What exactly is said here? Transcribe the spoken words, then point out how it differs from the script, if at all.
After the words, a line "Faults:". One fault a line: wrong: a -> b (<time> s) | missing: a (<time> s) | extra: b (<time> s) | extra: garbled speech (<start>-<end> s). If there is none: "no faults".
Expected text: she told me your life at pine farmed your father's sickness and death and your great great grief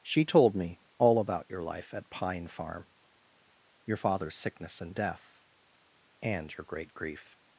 she told me all about your life at pine farm your father's sickness and death and your great grief
Faults:
extra: all about (1.0 s)
wrong: farmed -> farm (2.5 s)
missing: great (6.9 s)